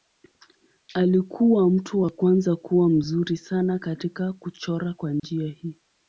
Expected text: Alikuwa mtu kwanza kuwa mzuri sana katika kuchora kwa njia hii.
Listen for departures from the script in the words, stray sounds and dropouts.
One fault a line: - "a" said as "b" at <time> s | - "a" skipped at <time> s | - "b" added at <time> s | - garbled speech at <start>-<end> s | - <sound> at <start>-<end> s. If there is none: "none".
- "wa" added at 2.0 s
- dropout at 5.2-5.2 s